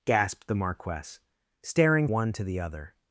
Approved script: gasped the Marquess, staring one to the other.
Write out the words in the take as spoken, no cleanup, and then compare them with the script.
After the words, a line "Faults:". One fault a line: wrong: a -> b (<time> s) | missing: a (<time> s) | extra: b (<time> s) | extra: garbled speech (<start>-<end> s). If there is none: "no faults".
gasped the Marquess, staring one to the other.
Faults:
no faults